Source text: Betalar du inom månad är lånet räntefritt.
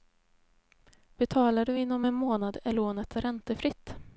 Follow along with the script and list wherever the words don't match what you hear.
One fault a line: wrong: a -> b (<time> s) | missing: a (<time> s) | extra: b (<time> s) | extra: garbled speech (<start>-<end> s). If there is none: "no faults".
extra: en (2.0 s)